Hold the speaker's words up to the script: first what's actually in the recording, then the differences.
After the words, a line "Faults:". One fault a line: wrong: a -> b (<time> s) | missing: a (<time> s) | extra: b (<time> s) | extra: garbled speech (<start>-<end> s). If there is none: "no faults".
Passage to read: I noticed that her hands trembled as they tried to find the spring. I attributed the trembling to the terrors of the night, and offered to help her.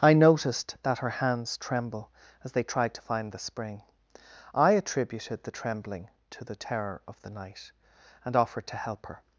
I noticed that her hands tremble as they tried to find the spring. I attributed the trembling to the terror of the night, and offered to help her.
Faults:
wrong: trembled -> tremble (1.6 s)
wrong: terrors -> terror (6.6 s)